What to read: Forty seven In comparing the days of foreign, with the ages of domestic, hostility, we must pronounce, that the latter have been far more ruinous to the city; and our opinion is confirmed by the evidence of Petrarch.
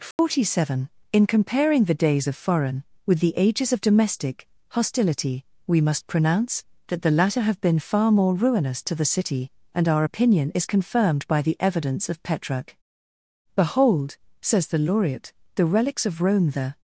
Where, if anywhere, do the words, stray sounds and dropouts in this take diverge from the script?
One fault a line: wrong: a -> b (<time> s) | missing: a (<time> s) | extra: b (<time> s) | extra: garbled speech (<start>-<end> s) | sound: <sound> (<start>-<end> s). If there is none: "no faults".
sound: dropout (0.1-0.2 s)
extra: Behold says the laureate the relics of Rome the (13.5 s)